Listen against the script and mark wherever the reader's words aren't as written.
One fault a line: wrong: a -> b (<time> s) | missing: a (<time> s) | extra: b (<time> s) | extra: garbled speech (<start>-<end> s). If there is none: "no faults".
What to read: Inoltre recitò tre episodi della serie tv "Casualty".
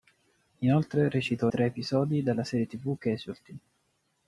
no faults